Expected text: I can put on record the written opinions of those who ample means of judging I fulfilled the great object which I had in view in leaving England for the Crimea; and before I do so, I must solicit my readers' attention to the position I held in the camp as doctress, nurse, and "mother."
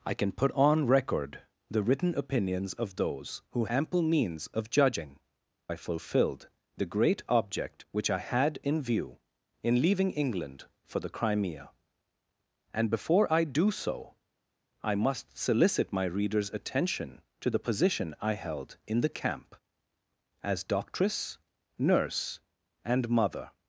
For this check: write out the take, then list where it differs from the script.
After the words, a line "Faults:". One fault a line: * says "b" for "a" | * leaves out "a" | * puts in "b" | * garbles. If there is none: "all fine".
I can put on record the written opinions of those who ample means of judging I fulfilled the great object which I had in view in leaving England for the Crimea; and before I do so, I must solicit my readers' attention to the position I held in the camp as doctress, nurse, and "mother."
Faults:
all fine